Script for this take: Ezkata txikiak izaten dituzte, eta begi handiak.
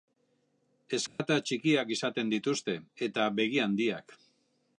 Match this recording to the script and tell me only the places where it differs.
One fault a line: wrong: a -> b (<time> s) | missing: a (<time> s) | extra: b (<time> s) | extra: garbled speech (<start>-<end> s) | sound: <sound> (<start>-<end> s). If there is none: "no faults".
sound: dropout (1.1-1.2 s)